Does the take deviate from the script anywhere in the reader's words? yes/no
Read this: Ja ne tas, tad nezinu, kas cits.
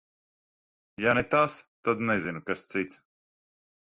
no